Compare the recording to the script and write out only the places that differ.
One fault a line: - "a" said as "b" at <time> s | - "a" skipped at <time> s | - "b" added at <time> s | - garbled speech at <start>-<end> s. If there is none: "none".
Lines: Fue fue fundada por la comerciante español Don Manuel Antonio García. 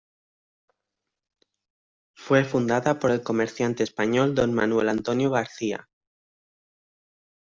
- "fue" skipped at 2.4 s
- "la" said as "el" at 3.1 s